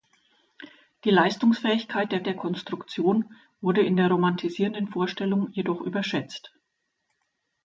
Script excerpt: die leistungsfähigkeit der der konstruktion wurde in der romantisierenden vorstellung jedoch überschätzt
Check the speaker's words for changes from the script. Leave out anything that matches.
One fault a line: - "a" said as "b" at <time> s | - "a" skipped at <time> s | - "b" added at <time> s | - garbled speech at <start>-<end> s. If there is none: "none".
none